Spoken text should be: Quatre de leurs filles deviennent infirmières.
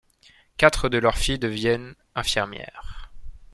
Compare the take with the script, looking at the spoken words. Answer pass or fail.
pass